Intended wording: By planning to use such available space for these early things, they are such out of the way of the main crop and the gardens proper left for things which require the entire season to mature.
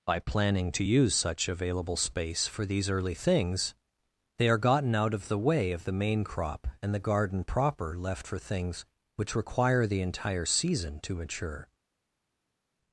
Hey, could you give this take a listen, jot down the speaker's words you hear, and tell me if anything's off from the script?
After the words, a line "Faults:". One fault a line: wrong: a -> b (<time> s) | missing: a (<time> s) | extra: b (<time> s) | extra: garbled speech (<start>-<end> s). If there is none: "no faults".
By planning to use such available space for these early things, they are gotten out of the way of the main crop and the garden proper left for things which require the entire season to mature.
Faults:
wrong: such -> gotten (4.6 s)
wrong: gardens -> garden (7.0 s)